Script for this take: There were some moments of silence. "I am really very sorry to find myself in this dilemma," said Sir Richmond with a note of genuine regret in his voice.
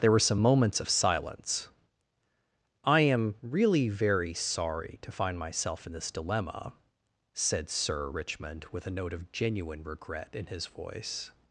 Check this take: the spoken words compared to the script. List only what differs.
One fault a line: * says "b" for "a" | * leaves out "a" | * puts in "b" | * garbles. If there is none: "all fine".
all fine